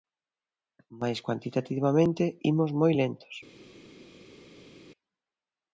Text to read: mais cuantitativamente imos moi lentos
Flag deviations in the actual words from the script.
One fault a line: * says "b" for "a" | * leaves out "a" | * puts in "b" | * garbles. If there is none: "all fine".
all fine